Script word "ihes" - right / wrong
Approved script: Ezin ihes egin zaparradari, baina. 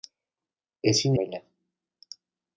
wrong